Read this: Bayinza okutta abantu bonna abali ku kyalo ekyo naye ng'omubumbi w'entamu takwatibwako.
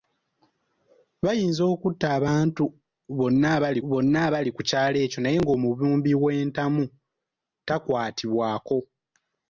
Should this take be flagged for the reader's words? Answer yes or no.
yes